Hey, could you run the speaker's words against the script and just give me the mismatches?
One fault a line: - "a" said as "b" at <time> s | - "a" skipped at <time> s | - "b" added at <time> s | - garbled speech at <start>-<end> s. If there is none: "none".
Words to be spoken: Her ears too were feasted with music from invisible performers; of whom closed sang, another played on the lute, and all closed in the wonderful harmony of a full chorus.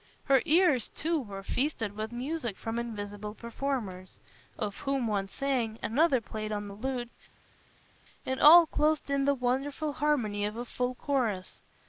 - "closed" said as "one" at 5.0 s